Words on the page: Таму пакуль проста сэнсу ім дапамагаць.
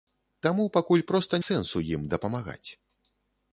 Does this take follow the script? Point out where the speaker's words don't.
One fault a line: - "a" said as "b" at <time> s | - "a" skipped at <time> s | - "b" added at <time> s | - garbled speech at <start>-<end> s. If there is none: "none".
none